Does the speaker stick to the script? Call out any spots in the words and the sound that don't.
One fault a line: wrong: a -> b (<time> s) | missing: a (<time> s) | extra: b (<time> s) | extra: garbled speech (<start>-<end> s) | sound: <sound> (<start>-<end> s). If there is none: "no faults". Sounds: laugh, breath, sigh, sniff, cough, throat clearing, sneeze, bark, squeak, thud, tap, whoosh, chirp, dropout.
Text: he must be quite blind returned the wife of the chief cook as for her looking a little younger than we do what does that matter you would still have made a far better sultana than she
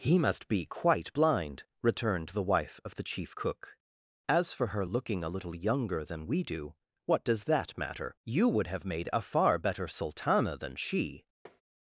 missing: still (8.7 s)
sound: tap (11.5-11.6 s)